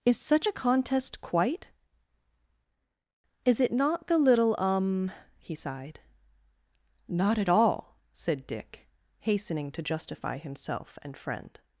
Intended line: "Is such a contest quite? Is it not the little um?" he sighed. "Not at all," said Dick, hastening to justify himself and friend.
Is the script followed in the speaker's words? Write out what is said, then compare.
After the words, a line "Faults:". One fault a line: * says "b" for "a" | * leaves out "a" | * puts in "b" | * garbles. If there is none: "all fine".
"Is such a contest quite? Is it not the little um?" he sighed. "Not at all," said Dick, hastening to justify himself and friend.
Faults:
all fine